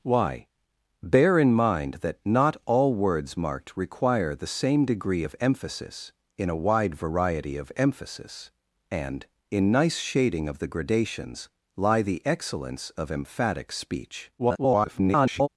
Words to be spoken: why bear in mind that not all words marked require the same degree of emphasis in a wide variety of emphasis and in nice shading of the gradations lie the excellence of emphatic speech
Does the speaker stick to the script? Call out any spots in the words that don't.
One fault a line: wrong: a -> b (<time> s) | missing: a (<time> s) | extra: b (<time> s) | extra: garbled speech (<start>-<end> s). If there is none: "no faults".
extra: garbled speech (14.4-15.5 s)